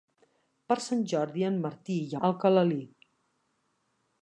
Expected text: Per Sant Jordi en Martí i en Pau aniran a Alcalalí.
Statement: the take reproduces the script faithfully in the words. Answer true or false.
false